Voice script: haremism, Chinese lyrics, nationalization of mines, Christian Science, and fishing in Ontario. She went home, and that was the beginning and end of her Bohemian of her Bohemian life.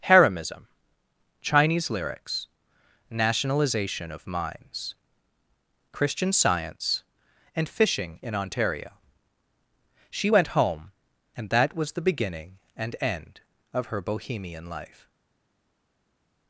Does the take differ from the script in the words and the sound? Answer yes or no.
yes